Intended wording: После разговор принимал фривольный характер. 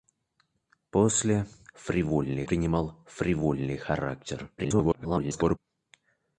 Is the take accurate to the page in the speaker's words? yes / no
no